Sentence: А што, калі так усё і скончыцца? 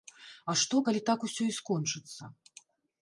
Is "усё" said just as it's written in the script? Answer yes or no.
yes